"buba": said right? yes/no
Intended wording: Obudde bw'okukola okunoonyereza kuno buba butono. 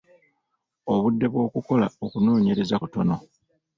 no